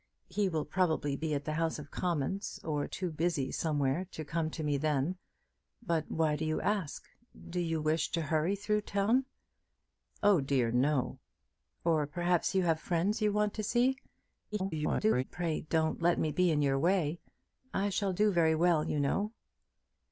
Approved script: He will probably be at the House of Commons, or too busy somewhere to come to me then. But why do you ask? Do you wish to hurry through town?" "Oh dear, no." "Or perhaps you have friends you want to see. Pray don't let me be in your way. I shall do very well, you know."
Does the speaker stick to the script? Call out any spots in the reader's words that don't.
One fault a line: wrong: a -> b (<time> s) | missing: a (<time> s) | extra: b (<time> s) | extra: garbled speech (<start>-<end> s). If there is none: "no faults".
extra: garbled speech (14.5-15.2 s)